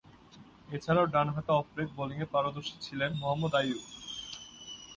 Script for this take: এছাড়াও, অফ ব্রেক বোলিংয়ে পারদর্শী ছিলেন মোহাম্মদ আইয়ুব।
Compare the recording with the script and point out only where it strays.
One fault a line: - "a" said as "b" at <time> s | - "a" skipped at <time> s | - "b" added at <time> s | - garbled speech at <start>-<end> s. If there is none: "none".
- "ডানহাতে" added at 1.1 s